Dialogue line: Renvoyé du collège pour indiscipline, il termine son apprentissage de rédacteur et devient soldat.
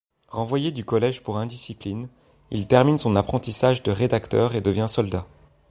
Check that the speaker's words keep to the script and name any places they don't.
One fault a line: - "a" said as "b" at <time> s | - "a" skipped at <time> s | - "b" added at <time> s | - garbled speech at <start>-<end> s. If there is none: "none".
none